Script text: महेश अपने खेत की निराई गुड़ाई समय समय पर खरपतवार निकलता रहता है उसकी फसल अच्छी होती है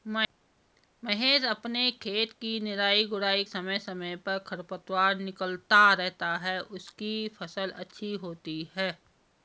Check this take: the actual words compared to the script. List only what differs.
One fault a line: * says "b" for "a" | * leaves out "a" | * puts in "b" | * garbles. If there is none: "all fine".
all fine